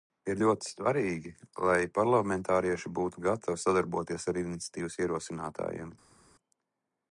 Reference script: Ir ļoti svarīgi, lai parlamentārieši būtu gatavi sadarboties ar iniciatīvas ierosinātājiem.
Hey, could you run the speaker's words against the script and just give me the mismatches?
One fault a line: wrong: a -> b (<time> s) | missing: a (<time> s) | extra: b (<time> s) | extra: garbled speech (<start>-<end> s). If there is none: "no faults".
no faults